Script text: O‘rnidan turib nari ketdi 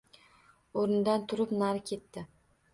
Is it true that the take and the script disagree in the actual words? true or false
false